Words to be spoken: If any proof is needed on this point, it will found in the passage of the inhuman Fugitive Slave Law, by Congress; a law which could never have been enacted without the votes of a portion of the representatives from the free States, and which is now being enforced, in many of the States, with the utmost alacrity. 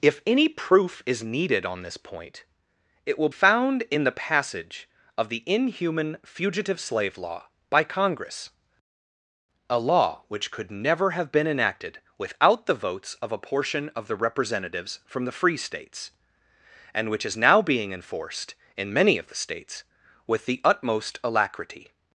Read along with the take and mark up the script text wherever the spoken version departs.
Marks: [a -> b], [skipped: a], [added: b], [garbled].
If any proof is needed on this point, it will found in the passage of the inhuman Fugitive Slave Law, by Congress; a law which could never have been enacted without the votes of a portion of the representatives from the free States, and which is now being enforced, in many of the States, with the utmost alacrity.